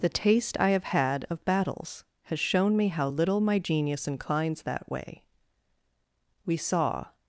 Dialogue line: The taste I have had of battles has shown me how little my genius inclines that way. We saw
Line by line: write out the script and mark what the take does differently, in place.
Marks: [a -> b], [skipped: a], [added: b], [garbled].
The taste I have had of battles has shown me how little my genius inclines that way. We saw